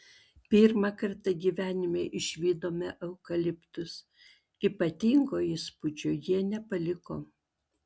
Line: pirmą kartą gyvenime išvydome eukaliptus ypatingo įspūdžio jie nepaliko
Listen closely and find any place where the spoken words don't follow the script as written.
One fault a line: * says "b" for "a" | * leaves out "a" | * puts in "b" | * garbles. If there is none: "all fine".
all fine